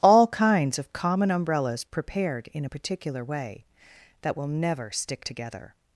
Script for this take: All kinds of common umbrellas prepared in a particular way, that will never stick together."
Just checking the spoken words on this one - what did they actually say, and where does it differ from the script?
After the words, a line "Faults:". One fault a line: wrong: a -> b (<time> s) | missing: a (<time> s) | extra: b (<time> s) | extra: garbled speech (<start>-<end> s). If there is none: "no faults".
All kinds of common umbrellas prepared in a particular way, that will never stick together."
Faults:
no faults